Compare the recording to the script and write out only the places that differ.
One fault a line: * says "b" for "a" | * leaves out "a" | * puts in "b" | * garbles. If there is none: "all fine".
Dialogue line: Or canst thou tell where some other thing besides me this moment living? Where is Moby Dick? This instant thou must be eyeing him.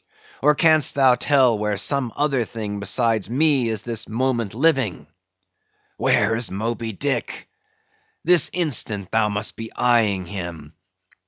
* puts in "is"